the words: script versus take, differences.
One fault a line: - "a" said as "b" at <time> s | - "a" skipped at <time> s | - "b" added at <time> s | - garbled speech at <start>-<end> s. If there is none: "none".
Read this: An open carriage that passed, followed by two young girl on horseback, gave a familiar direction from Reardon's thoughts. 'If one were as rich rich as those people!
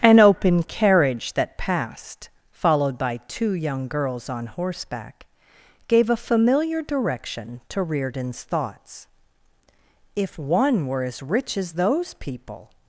- "girl" said as "girls" at 3.9 s
- "from" said as "to" at 7.7 s
- "rich" skipped at 11.6 s